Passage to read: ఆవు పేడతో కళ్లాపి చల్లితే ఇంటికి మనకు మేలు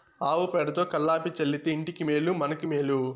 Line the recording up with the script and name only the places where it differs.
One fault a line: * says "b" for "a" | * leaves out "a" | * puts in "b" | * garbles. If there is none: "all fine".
* puts in "మేలు"